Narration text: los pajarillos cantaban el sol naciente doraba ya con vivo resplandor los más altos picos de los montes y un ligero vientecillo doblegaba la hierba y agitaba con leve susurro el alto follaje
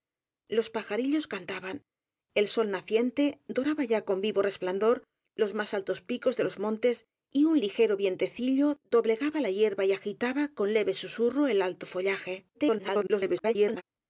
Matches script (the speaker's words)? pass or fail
fail